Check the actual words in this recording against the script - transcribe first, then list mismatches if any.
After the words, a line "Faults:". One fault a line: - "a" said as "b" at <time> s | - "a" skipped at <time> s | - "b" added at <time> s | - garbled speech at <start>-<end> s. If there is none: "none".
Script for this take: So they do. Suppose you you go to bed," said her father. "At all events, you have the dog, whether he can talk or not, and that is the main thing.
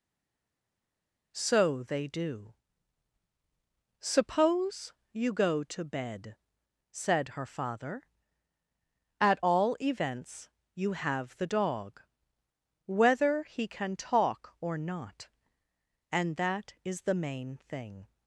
So they do. Suppose you go to bed," said her father. "At all events, you have the dog, whether he can talk or not, and that is the main thing.
Faults:
- "you" skipped at 5.3 s